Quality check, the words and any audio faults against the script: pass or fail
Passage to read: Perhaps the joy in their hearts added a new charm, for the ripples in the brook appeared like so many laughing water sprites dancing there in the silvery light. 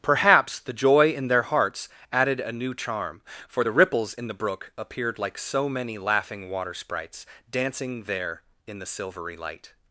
pass